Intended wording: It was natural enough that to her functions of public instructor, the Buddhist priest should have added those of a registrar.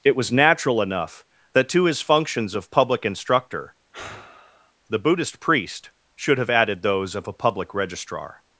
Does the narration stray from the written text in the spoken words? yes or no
yes